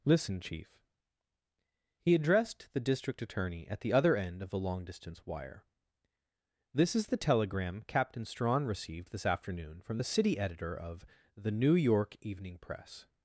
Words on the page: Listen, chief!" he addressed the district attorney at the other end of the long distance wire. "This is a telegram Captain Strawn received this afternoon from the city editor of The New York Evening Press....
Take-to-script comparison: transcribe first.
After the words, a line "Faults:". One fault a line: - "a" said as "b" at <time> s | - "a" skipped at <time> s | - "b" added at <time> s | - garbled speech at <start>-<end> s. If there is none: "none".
Listen, chief!" he addressed the district attorney at the other end of the long distance wire. "This is the telegram Captain Strawn received this afternoon from the city editor of The New York Evening Press....
Faults:
- "a" said as "the" at 7.1 s